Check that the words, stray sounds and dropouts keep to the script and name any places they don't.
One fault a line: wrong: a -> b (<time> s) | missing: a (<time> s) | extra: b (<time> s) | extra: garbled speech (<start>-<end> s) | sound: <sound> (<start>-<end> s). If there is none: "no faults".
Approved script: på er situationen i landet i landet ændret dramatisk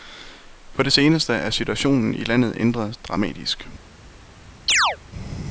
extra: det seneste (0.8 s)
missing: i landet (2.5 s)
sound: chirp (4.7-5.0 s)